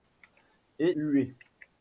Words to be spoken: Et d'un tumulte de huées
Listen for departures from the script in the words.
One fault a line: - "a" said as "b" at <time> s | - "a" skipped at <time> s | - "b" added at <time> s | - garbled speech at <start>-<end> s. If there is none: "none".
- "d'un tumulte de" skipped at 0.9 s